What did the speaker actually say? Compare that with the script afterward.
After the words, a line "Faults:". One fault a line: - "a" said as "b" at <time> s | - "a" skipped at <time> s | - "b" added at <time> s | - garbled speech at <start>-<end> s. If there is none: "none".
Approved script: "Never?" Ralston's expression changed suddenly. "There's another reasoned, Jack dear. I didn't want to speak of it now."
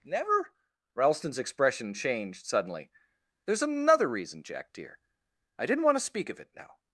"Never?" Ralston's expression changed suddenly. "There's another reason, Jack dear. I didn't want to speak of it now."
Faults:
- "reasoned" said as "reason" at 4.1 s